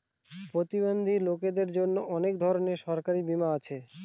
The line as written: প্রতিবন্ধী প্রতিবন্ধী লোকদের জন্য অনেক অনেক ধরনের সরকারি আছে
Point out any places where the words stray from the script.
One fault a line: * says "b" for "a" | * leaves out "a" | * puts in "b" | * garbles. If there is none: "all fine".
* leaves out "প্রতিবন্ধী"
* leaves out "অনেক"
* puts in "বীমা"